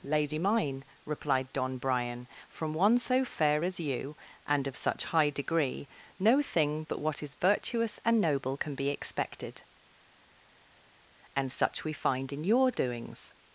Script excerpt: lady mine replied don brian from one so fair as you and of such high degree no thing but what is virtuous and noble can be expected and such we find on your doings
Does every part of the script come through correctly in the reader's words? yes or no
no